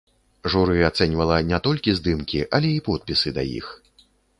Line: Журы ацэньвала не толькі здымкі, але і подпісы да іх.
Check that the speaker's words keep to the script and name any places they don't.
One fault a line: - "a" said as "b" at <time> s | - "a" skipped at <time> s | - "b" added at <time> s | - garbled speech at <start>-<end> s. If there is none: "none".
none